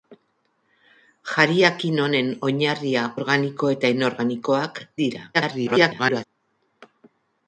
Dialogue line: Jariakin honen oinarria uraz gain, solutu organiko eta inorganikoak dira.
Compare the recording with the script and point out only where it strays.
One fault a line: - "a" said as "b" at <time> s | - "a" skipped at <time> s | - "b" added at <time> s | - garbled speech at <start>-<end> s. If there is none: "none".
- "uraz gain solutu" skipped at 3.0 s
- garbled speech at 5.3-6.2 s